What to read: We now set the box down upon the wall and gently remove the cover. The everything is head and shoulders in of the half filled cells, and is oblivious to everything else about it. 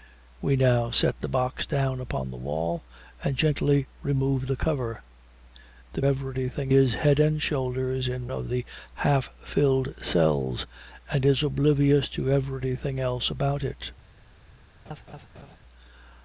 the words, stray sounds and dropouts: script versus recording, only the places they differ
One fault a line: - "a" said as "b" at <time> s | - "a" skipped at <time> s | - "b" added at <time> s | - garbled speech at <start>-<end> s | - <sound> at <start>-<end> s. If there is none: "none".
- laugh at 14.9-15.6 s